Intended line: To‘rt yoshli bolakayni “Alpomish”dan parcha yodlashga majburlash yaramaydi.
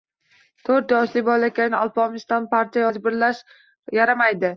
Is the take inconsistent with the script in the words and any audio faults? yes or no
yes